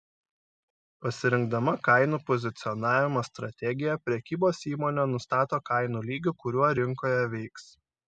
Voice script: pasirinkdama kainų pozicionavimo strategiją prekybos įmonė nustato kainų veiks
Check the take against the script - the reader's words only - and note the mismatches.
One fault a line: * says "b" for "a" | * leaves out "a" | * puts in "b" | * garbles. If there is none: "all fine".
* puts in "lygį kuriuo rinkoje"